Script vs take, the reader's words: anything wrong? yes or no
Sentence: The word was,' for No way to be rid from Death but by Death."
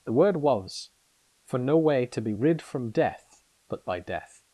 no